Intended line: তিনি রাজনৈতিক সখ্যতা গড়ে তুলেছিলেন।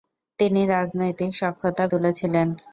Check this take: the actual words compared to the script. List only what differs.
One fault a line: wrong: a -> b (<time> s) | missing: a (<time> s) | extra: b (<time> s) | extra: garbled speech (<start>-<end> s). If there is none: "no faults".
missing: গড়ে (1.8 s)